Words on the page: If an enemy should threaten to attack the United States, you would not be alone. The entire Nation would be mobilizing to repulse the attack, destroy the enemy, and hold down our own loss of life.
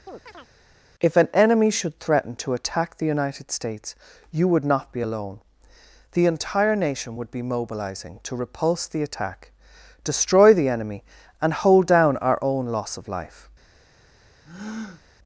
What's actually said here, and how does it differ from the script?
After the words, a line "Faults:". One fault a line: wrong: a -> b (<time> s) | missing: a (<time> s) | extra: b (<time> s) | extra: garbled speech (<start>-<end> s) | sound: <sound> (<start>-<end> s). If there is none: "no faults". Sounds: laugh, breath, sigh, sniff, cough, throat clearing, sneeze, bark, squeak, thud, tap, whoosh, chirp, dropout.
If an enemy should threaten to attack the United States, you would not be alone. The entire Nation would be mobilizing to repulse the attack, destroy the enemy, and hold down our own loss of life.
Faults:
sound: chirp (0.1-0.5 s)
sound: breath (14.4-15.0 s)